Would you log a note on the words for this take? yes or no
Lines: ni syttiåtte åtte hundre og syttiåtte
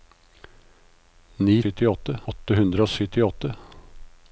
no